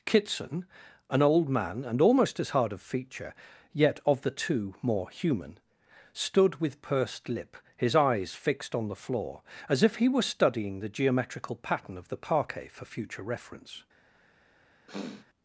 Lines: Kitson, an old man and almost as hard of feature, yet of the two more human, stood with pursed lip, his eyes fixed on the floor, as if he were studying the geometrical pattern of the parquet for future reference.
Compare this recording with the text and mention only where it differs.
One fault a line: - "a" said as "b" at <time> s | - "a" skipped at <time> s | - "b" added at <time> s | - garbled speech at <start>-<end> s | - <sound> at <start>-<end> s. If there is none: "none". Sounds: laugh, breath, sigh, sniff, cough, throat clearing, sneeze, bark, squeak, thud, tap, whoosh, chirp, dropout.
- sniff at 14.9-15.3 s